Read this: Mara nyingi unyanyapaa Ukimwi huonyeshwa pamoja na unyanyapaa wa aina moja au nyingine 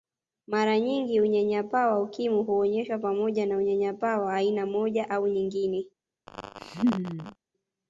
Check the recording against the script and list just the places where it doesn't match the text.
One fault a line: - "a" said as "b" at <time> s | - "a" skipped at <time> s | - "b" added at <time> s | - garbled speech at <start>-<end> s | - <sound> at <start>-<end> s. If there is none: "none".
- "wa" added at 1.9 s
- laugh at 6.3-7.4 s